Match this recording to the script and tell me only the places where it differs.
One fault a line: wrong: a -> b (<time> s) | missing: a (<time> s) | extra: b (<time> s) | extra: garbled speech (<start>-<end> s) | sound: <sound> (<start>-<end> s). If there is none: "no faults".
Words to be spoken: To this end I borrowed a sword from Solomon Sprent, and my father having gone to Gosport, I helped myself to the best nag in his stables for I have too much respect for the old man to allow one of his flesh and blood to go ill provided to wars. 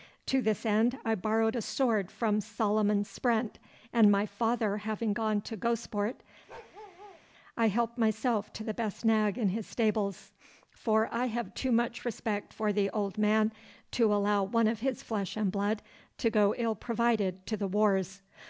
sound: bark (6.5-7.2 s)
extra: the (17.6 s)